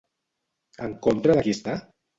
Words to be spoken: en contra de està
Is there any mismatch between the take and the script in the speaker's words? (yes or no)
yes